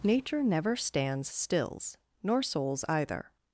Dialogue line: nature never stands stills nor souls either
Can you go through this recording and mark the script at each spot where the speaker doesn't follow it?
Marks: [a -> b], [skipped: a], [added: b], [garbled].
nature never stands stills nor souls either